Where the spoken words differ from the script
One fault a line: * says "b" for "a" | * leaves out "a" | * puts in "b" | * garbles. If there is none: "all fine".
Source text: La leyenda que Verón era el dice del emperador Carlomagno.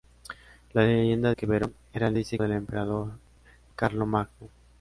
all fine